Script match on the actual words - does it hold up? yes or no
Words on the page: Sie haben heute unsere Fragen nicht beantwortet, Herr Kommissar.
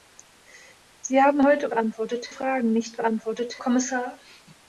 no